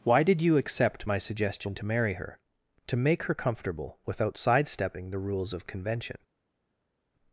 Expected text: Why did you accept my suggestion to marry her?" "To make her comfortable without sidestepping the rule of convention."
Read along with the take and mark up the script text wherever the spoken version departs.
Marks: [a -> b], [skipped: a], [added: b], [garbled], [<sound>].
Why did you accept my suggestion to marry her?" "To make her comfortable without sidestepping the [rule -> rules] of convention."